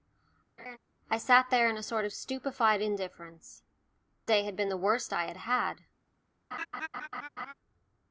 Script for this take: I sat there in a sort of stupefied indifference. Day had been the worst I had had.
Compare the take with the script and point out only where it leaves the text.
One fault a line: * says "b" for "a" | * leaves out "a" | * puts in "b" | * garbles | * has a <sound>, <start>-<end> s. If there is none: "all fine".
* has a laugh, 0.6-0.8 s
* has a laugh, 6.5-7.5 s